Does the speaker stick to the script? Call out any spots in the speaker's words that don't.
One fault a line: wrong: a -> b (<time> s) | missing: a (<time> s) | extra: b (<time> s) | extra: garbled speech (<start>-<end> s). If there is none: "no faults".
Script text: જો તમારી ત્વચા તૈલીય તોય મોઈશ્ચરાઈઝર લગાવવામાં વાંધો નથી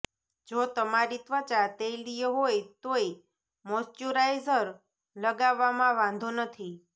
extra: હોય (2.4 s)